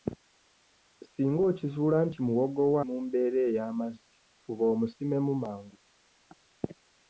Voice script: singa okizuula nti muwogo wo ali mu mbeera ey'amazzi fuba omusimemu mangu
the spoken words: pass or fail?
fail